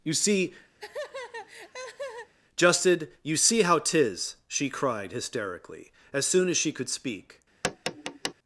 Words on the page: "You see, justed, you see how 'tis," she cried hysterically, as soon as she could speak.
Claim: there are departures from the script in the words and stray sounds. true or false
true